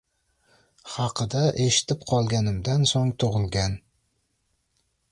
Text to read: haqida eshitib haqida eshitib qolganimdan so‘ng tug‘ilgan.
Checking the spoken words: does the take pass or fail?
fail